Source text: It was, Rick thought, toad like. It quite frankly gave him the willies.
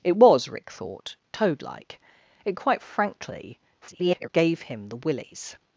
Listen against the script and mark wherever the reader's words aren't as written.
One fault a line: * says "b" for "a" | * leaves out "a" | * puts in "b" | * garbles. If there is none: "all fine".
* garbles